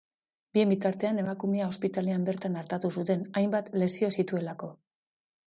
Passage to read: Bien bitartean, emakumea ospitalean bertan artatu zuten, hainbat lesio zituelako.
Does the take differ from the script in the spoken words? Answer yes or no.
no